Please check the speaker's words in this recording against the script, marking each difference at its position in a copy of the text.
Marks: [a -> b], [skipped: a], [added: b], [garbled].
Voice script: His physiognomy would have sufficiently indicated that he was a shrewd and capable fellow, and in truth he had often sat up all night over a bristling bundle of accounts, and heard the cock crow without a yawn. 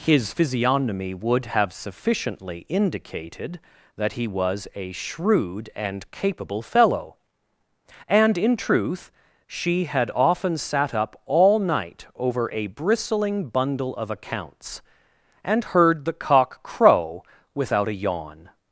His physiognomy would have sufficiently indicated that he was a shrewd and capable fellow, and in truth [he -> she] had often sat up all night over a bristling bundle of accounts, and heard the cock crow without a yawn.